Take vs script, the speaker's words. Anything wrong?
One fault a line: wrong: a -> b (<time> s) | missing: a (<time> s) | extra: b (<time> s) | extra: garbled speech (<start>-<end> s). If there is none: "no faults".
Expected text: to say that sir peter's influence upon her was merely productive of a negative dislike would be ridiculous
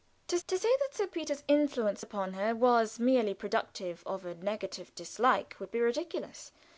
extra: to (0.5 s)